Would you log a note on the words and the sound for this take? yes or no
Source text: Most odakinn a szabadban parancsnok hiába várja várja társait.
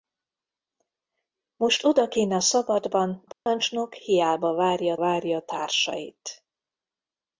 yes